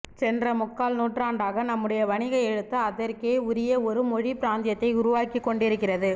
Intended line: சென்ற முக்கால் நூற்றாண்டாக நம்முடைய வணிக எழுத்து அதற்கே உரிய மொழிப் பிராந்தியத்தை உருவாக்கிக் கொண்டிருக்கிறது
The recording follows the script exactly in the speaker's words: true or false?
false